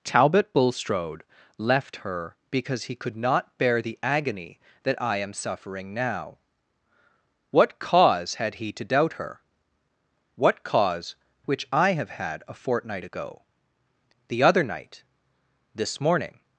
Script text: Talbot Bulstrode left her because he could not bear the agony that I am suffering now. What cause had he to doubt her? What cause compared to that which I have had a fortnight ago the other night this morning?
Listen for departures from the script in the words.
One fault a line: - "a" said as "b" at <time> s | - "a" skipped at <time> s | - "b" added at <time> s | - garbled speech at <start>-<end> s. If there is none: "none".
- "compared to that" skipped at 11.2 s